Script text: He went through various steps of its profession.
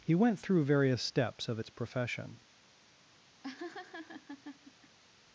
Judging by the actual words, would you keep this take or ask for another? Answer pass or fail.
pass